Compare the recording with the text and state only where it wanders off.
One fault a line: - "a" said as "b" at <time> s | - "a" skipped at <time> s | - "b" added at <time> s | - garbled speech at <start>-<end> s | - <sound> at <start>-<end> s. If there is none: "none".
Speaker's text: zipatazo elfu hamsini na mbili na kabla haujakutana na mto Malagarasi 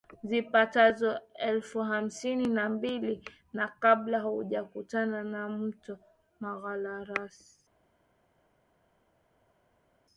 none